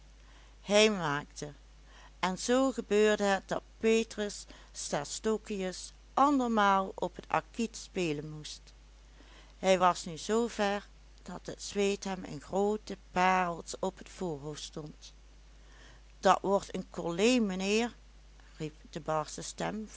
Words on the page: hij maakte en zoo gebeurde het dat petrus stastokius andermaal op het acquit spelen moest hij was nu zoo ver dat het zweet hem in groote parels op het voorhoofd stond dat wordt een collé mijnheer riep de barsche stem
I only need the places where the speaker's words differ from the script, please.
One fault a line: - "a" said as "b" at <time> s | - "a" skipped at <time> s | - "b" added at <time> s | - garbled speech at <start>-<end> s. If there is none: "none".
none